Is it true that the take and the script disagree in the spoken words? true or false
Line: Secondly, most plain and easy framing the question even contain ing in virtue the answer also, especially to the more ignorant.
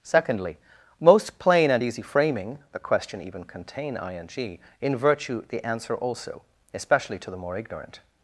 false